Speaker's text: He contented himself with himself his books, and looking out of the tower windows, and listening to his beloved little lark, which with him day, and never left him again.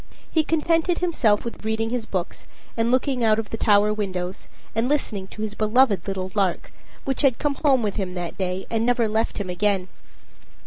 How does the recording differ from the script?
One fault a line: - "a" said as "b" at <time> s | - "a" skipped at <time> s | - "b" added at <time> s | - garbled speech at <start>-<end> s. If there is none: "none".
- "himself" said as "reading" at 1.6 s
- "had come home" added at 7.2 s
- "that" added at 8.2 s